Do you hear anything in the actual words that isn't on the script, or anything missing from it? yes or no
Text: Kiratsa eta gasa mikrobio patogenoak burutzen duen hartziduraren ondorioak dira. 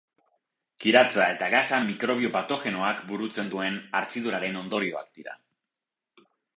no